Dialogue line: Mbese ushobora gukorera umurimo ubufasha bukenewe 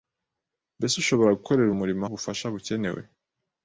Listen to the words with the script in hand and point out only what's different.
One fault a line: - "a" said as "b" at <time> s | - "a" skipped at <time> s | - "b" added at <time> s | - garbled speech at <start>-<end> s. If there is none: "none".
none